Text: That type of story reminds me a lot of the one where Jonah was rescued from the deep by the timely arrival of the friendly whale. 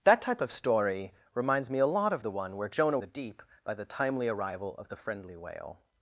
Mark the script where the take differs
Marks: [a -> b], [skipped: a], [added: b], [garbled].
That type of story reminds me a lot of the one where Jonah [skipped: was rescued from] the deep by the timely arrival of the friendly whale.